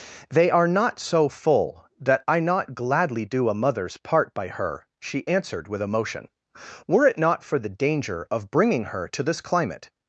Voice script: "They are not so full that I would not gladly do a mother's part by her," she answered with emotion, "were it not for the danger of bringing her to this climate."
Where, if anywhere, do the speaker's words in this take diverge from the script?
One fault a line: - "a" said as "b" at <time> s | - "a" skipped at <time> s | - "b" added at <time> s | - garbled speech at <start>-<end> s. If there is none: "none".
- "would" skipped at 2.4 s